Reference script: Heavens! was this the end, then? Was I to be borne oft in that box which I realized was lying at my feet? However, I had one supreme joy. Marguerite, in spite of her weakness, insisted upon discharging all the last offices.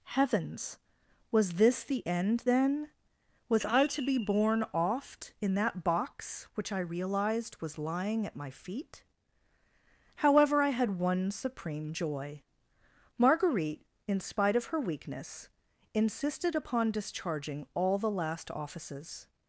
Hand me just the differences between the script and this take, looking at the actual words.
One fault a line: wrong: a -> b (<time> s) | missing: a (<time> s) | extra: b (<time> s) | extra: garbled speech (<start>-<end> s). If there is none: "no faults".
no faults